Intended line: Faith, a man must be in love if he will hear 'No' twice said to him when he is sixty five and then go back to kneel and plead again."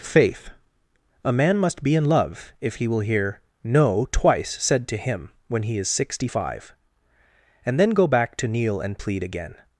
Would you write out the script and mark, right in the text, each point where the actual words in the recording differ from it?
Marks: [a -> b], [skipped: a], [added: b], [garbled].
Faith, a man must be in love if he will hear 'No' twice said to him when he is sixty five and then go back to kneel and plead again."